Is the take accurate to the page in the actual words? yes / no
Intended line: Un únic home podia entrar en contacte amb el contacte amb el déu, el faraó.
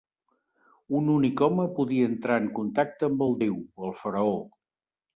no